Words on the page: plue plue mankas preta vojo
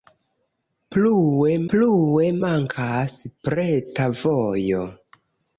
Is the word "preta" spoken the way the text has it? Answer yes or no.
yes